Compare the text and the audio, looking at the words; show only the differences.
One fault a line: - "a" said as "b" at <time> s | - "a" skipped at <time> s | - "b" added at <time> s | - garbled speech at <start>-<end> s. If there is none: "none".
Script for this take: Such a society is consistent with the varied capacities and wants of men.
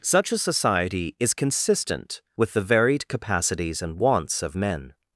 none